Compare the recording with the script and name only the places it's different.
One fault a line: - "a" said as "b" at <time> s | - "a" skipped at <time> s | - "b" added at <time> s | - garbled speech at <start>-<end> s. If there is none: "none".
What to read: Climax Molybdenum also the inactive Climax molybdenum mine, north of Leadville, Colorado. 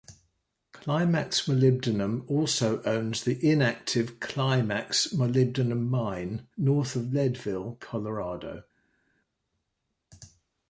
- "owns" added at 2.9 s